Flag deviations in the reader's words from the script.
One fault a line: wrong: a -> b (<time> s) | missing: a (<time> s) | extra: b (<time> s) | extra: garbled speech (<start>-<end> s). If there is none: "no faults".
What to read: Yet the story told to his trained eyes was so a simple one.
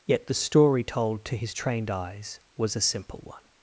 missing: so (2.8 s)